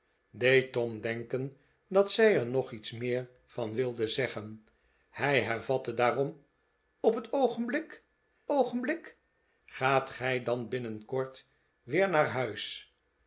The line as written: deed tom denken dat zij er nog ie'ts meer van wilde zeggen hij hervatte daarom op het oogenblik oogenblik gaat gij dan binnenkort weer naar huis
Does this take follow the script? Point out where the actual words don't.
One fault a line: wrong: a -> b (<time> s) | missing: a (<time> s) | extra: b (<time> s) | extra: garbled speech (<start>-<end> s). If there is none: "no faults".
no faults